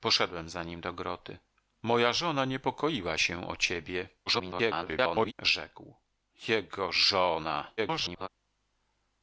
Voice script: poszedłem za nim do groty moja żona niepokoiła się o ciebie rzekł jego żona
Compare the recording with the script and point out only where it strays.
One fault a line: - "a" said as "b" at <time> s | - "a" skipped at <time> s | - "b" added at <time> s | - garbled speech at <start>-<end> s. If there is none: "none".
- garbled speech at 4.3-5.3 s
- garbled speech at 7.8-8.3 s